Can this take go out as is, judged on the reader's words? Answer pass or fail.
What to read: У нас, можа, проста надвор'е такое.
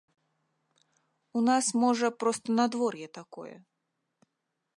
pass